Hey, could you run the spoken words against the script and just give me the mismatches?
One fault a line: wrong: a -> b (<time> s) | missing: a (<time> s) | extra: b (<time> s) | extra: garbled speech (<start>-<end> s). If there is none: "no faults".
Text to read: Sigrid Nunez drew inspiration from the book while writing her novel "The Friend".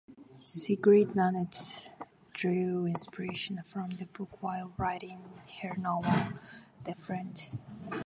no faults